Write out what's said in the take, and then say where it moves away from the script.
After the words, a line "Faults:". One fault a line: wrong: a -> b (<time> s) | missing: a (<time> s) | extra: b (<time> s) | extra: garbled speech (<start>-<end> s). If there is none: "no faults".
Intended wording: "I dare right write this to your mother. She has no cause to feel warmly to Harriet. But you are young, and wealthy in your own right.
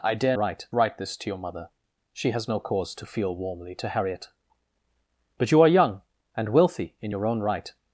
"I dare right write this to your mother. She has no cause to feel warmly to Harriet. But you are young, and wealthy in your own right.
Faults:
no faults